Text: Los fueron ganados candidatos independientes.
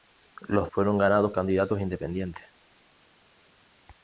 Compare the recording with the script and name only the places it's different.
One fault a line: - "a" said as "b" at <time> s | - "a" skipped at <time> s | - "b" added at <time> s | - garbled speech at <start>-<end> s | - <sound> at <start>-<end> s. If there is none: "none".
none